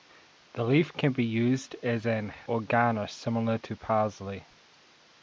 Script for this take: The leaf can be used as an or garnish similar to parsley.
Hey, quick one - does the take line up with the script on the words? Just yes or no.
yes